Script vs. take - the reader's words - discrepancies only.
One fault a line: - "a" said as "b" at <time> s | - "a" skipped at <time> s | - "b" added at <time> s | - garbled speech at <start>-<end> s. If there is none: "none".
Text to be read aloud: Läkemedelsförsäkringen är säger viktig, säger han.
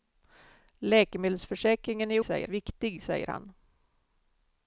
none